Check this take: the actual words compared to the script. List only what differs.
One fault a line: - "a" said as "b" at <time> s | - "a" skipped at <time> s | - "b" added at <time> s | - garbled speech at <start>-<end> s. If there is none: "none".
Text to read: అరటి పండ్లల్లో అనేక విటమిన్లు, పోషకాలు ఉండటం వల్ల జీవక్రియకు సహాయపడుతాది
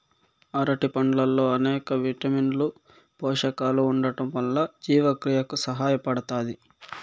none